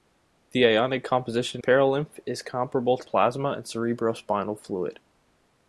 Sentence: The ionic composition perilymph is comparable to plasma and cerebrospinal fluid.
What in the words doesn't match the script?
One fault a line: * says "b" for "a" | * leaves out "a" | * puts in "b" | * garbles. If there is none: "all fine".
all fine